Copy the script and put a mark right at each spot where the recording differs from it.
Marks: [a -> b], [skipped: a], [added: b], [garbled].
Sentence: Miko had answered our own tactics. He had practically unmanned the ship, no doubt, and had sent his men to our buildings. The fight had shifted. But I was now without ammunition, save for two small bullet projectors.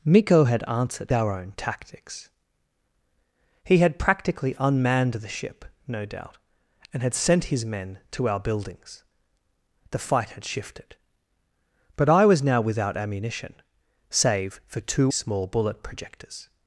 Miko had answered our own tactics. He had practically unmanned the ship, no doubt, and had sent his men to our buildings. The fight had shifted. But I was now without ammunition, save for two small bullet projectors.